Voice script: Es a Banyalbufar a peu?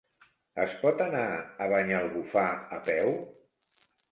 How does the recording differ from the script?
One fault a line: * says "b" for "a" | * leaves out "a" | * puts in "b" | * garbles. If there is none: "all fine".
* puts in "pot anar"